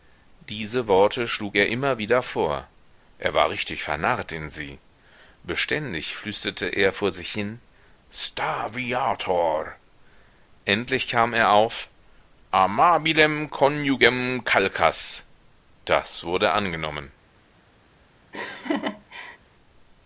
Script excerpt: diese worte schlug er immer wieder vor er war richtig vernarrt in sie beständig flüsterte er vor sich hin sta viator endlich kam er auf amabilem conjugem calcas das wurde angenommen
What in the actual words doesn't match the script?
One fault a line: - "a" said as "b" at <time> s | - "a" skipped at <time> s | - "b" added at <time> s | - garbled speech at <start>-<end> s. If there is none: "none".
none